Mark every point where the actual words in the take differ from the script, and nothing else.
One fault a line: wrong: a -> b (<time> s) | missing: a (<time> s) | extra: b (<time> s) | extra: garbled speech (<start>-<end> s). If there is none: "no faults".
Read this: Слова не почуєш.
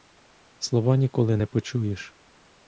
extra: ніколи (1.0 s)